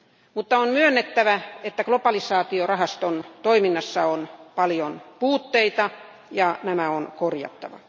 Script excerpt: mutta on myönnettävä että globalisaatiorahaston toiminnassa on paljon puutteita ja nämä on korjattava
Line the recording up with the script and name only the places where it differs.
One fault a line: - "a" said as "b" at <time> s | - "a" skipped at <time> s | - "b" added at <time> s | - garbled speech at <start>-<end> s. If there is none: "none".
none